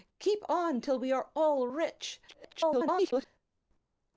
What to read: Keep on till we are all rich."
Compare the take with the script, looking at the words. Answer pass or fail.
fail